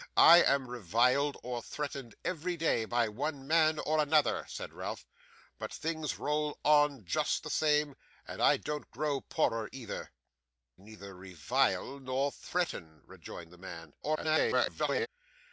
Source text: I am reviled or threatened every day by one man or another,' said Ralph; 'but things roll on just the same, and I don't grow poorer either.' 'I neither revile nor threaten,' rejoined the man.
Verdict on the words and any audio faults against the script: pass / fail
fail